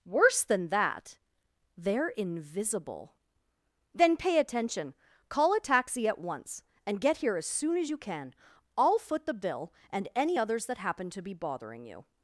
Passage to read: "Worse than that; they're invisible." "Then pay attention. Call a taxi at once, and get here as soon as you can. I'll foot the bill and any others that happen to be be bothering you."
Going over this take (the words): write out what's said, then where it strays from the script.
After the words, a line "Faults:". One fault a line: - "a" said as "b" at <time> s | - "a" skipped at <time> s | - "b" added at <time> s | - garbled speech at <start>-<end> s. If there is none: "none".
"Worse than that; they're invisible." "Then pay attention. Call a taxi at once, and get here as soon as you can. I'll foot the bill and any others that happen to be bothering you."
Faults:
- "be" skipped at 11.3 s